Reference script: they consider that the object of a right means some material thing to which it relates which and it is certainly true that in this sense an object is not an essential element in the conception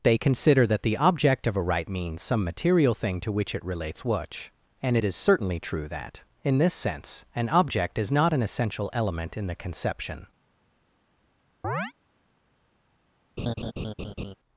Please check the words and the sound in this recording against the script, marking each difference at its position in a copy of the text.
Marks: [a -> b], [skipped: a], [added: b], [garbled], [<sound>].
they consider that the object of a right means some material thing to which it relates which and it is certainly true that in this sense an object is not an essential element in the conception [chirp] [laugh]